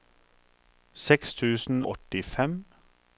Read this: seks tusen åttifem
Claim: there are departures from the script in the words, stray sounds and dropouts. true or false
false